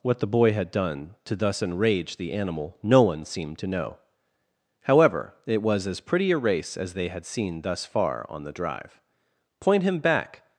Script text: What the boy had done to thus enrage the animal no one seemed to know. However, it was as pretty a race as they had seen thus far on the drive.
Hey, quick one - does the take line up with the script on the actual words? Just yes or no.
no